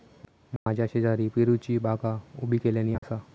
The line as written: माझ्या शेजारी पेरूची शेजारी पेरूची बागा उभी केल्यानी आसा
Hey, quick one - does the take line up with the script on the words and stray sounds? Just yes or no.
no